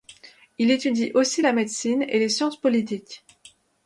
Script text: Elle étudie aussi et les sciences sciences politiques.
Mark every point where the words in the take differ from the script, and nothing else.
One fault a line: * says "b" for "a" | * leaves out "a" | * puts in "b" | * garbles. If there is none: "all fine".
* says "Il" for "Elle"
* puts in "la médecine"
* leaves out "sciences"